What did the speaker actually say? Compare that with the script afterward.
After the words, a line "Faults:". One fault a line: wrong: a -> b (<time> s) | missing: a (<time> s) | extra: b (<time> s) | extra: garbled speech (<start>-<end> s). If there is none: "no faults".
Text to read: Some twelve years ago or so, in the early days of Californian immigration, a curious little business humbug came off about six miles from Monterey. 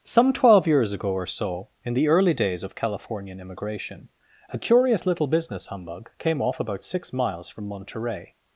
Some twelve years ago or so, in the early days of Californian immigration, a curious little business humbug came off about six miles from Monterey.
Faults:
no faults